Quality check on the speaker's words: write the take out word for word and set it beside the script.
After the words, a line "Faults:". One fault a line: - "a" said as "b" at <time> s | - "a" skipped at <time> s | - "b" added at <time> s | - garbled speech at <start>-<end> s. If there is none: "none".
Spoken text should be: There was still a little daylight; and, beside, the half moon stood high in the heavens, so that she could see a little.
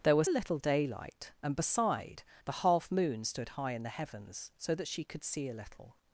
There was a little daylight; and, beside, the half moon stood high in the heavens, so that she could see a little.
Faults:
- "still" skipped at 0.3 s